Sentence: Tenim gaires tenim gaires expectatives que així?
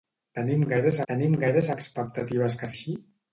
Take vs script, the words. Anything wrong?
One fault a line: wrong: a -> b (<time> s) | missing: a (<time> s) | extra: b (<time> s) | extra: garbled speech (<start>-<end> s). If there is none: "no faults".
no faults